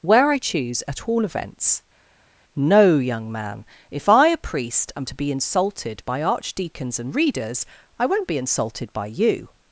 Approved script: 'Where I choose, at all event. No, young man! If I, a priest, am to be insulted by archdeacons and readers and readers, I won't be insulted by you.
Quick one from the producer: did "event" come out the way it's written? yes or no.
no